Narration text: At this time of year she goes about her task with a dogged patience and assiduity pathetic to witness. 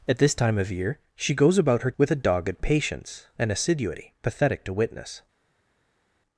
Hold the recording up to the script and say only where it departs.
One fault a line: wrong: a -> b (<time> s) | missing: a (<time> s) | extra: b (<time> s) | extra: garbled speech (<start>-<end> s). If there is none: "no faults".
missing: task (1.9 s)